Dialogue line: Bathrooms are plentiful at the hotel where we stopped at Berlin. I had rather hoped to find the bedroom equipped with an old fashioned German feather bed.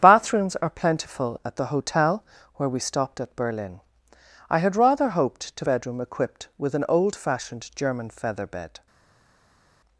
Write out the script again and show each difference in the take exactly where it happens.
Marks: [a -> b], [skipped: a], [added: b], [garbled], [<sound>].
Bathrooms are plentiful at the hotel where we stopped at Berlin. I had rather hoped to [skipped: find the] bedroom equipped with an old fashioned German feather bed.